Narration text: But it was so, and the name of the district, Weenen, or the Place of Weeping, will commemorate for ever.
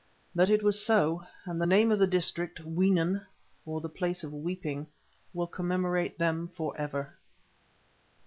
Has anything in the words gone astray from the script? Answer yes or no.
yes